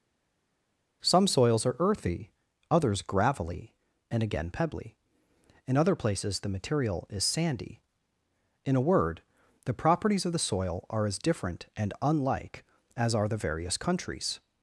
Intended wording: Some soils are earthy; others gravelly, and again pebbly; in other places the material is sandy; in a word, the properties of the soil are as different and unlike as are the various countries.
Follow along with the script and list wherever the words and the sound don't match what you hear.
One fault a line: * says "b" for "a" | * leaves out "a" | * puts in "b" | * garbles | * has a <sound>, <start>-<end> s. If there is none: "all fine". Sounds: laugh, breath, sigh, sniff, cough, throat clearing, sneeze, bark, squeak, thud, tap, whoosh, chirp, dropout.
all fine